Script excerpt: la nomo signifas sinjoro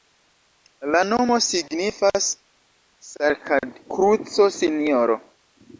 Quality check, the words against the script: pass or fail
fail